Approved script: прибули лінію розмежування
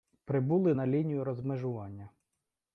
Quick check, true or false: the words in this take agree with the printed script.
false